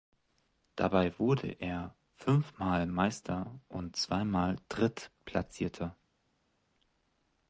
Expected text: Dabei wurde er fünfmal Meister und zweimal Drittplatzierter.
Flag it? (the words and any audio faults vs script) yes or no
no